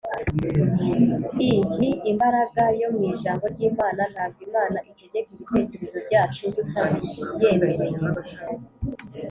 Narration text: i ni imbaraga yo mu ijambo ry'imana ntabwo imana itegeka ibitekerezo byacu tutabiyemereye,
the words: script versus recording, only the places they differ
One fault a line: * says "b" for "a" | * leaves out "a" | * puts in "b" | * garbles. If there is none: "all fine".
all fine